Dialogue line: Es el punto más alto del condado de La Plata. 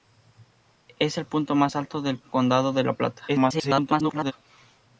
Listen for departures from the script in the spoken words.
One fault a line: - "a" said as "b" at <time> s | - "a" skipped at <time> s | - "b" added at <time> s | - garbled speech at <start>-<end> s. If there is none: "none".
- garbled speech at 3.3-4.3 s